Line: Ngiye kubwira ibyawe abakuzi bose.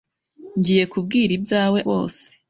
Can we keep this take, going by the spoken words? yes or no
no